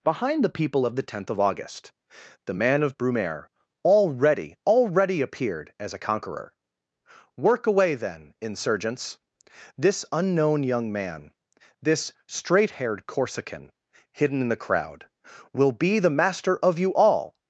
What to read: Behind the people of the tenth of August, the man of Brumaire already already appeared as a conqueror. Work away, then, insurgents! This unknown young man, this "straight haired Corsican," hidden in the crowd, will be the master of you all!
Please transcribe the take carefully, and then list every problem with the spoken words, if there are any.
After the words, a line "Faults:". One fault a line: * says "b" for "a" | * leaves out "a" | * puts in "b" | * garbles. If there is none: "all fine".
Behind the people of the tenth of August, the man of Brumaire already already appeared as a conqueror. Work away, then, insurgents! This unknown young man, this "straight haired Corsican," hidden in the crowd, will be the master of you all!
Faults:
all fine